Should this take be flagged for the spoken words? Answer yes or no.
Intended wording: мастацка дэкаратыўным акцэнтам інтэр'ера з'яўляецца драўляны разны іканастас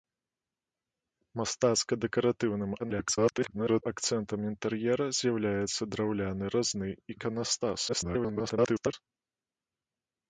yes